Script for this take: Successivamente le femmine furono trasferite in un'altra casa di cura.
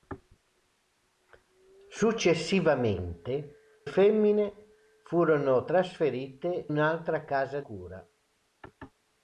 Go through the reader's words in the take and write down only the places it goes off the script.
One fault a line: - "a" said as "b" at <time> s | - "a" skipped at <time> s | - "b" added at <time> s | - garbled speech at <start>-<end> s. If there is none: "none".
- "le" skipped at 3.6 s
- "in" skipped at 6.7 s
- "di" skipped at 7.6 s